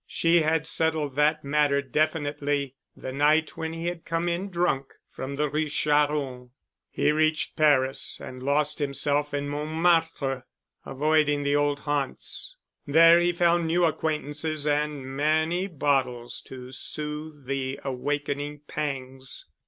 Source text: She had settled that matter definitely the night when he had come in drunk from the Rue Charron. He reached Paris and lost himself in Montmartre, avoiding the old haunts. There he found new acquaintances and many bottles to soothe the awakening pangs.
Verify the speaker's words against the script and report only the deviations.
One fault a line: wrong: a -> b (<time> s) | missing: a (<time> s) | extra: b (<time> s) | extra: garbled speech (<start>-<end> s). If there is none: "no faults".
no faults